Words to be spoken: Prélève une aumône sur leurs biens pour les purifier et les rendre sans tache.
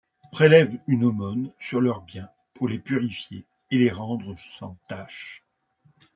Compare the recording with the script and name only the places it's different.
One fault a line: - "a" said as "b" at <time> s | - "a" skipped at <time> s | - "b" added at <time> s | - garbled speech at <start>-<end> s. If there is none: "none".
none